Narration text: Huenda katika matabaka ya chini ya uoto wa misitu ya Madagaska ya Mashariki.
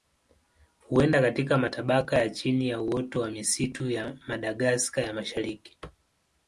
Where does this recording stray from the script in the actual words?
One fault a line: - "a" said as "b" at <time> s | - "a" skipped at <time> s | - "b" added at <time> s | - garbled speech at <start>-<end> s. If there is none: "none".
none